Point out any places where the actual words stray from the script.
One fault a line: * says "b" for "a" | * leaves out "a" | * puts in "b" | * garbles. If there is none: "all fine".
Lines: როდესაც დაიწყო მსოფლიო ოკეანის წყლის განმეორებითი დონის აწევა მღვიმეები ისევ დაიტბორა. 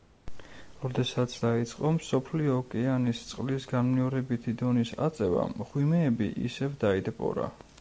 all fine